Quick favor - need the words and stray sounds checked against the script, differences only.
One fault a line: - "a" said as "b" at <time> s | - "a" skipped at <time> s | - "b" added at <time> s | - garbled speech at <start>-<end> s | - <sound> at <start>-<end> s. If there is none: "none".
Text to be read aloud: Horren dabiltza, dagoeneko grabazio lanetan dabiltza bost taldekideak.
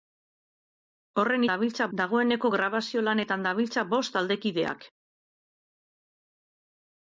none